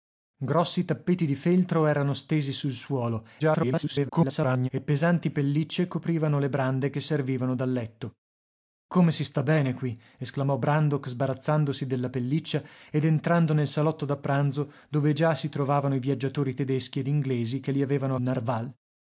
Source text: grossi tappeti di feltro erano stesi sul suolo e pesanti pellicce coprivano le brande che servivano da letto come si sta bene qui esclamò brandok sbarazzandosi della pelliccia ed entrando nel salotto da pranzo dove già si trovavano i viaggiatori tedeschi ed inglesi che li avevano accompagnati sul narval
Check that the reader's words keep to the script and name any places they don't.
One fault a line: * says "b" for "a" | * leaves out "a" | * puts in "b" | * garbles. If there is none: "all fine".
* garbles
* leaves out "accompagnati sul"